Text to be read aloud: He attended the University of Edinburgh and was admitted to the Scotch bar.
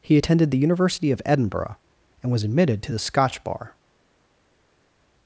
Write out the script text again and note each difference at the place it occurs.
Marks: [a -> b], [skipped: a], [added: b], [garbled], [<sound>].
He attended the University of Edinburgh and was admitted to the Scotch bar.